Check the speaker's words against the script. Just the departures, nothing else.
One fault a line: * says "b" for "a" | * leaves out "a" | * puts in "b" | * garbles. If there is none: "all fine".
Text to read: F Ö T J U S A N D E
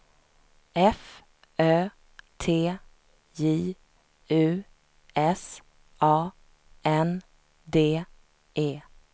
all fine